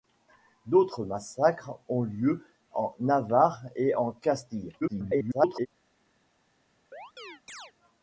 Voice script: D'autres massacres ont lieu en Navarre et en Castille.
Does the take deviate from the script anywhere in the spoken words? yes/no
yes